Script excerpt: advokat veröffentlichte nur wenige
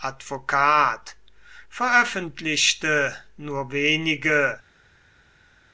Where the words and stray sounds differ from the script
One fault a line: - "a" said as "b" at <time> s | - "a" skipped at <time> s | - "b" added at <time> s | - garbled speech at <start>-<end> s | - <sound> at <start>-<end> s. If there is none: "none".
none